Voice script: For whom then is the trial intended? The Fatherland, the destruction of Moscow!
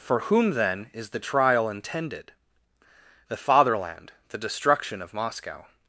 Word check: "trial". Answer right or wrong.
right